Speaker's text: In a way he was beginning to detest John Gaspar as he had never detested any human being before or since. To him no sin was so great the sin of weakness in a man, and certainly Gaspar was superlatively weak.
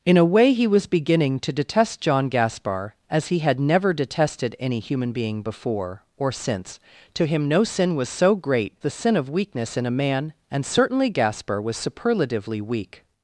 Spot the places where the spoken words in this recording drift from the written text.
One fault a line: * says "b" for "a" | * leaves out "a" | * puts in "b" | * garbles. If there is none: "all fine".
all fine